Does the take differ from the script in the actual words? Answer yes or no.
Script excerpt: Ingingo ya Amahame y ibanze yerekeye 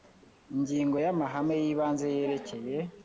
no